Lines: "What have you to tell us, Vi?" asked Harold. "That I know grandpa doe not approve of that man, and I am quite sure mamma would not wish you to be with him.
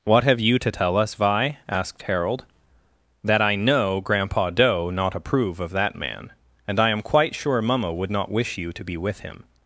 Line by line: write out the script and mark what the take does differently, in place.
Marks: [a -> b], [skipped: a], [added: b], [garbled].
"What have you to tell us, Vi?" asked Harold. "That I know grandpa doe not approve of that man, and I am quite sure mamma would not wish you to be with him.